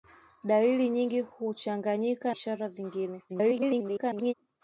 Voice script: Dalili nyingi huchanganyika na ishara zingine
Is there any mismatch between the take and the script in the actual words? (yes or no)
yes